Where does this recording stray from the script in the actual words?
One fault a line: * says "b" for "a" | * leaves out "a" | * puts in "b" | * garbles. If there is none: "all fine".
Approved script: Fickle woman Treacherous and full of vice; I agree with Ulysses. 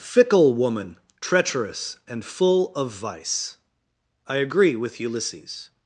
all fine